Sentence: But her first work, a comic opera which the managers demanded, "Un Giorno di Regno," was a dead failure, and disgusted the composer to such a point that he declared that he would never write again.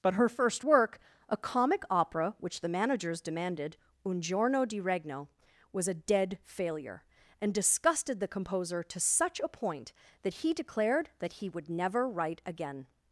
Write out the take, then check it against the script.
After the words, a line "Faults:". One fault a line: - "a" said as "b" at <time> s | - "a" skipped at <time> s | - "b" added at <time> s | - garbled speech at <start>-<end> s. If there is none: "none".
But her first work, a comic opera which the managers demanded, "Un Giorno di Regno," was a dead failure, and disgusted the composer to such a point that he declared that he would never write again.
Faults:
none